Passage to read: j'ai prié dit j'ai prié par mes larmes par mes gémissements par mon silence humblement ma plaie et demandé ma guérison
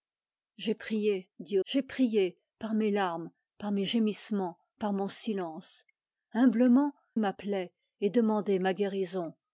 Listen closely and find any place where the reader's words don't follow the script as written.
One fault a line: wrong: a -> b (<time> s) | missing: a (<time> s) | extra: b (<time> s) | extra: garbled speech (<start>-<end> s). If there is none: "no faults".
no faults